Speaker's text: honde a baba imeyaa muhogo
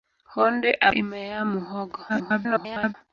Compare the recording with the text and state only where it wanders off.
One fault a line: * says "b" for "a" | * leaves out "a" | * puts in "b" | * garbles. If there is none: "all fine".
* leaves out "baba"
* garbles